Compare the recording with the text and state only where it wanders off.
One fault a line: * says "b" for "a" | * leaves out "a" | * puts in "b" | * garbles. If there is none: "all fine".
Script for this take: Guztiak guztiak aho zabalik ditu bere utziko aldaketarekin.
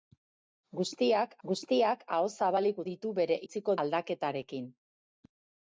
all fine